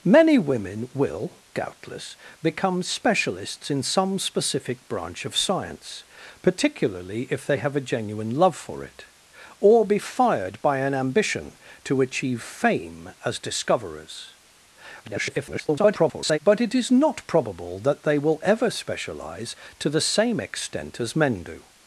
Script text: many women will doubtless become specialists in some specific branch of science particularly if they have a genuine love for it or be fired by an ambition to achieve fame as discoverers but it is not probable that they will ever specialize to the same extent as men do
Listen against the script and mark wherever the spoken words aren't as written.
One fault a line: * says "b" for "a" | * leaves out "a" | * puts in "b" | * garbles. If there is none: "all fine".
* garbles